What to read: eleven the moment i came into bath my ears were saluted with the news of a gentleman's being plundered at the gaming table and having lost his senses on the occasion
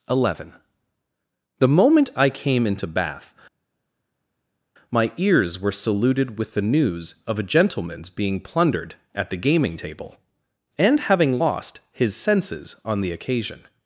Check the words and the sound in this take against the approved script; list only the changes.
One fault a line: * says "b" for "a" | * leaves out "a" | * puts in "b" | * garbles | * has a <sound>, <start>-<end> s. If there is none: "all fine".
all fine